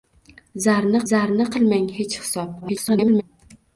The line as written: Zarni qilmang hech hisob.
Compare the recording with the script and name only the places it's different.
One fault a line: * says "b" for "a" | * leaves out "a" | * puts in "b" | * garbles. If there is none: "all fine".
* puts in "zarni"
* garbles